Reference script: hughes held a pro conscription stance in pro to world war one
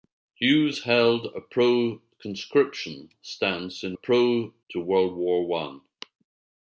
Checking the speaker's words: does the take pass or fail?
pass